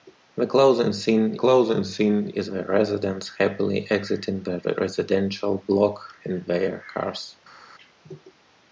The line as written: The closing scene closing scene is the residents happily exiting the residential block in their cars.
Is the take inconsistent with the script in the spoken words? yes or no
no